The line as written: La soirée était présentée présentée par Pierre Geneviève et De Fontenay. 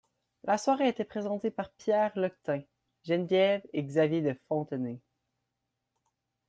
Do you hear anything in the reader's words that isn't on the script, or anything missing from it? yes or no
yes